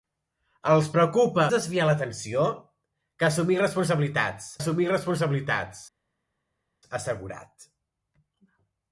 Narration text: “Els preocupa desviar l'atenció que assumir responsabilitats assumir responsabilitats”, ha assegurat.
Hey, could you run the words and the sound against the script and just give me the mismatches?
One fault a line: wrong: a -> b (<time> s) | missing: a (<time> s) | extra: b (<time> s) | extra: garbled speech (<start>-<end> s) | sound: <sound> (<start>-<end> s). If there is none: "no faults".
no faults